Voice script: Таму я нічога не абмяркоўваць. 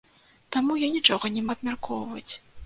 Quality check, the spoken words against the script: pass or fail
pass